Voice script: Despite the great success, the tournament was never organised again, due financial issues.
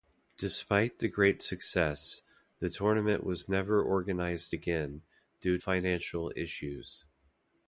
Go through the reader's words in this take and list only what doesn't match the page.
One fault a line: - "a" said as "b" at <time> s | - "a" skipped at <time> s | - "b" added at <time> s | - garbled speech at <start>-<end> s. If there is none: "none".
none